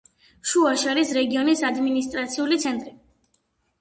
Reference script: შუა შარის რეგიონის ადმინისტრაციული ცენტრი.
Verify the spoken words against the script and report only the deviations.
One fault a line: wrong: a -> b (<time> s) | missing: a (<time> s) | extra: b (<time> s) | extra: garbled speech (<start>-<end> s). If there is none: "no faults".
no faults